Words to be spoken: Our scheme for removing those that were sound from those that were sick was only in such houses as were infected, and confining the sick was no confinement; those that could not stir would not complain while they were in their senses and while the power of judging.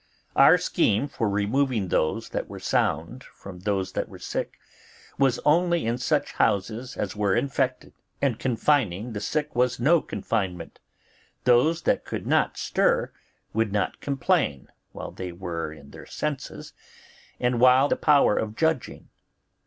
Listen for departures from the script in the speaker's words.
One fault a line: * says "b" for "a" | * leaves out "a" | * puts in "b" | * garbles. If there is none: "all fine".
all fine